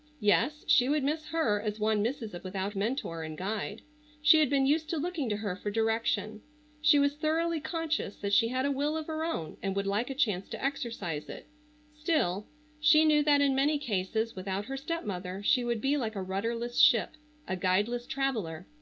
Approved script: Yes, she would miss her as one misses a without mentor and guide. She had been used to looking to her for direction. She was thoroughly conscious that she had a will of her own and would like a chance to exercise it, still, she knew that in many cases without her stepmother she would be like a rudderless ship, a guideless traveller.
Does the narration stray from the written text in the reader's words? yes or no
no